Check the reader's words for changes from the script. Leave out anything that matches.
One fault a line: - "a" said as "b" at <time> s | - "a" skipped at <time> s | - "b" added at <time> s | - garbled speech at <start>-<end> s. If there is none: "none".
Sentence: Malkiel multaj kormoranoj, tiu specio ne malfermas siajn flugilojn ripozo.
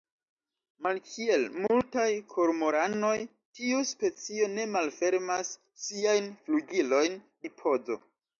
none